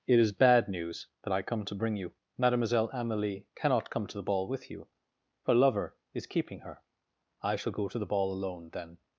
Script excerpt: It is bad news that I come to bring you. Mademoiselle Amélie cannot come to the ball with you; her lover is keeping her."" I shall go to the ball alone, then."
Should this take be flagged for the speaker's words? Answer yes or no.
no